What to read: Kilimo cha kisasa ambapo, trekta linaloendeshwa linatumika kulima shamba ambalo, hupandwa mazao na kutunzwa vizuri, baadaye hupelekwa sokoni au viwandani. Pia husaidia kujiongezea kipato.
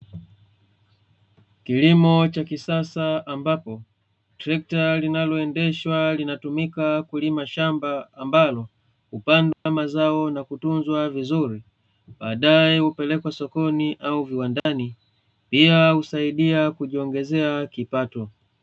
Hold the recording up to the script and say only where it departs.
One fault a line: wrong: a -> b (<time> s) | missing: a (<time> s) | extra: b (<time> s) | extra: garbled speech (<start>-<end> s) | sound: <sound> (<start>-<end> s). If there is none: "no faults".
sound: dropout (9.5-9.7 s)
sound: dropout (14.6-14.7 s)